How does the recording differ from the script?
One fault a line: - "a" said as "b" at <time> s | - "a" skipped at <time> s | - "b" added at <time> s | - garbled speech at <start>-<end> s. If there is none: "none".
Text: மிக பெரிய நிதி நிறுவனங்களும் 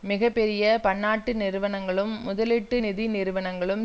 - "பன்னாட்டு நிறுவனங்களும் முதலீட்டு" added at 0.8 s